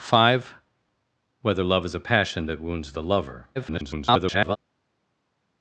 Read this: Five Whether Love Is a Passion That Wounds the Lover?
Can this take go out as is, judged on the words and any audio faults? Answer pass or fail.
fail